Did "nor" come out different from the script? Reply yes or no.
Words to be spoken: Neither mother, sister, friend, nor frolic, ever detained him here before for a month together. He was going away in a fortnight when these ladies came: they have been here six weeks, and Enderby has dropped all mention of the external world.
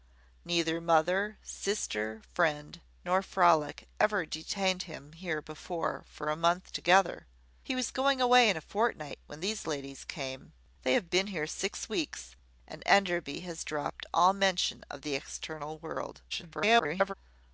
no